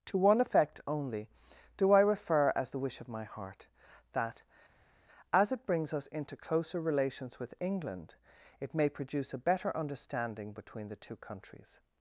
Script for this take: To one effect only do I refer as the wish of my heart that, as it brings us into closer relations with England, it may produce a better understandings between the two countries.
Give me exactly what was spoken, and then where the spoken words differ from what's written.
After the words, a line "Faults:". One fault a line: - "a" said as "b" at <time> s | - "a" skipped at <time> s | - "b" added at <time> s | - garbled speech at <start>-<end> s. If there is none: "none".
To one effect only do I refer as the wish of my heart that, as it brings us into closer relations with England, it may produce a better understanding between the two countries.
Faults:
- "understandings" said as "understanding" at 9.8 s